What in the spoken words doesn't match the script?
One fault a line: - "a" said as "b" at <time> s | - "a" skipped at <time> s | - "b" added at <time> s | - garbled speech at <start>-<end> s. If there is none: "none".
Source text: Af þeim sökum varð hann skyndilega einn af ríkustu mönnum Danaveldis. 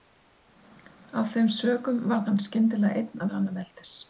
- "af ríkustu mönnum" skipped at 3.2 s